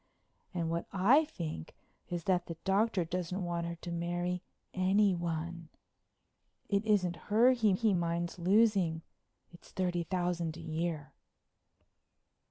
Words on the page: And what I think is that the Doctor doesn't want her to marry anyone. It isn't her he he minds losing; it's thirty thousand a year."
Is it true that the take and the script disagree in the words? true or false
false